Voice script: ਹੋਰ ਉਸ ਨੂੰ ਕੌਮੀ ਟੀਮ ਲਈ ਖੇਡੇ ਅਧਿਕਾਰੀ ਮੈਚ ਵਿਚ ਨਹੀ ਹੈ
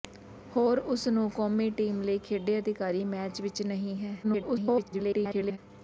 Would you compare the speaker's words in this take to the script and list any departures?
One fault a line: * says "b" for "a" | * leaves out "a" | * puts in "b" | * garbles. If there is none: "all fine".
* garbles